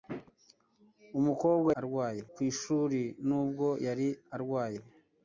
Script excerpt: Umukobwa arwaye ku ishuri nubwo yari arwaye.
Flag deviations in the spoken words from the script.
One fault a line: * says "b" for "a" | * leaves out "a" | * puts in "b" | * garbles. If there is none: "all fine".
all fine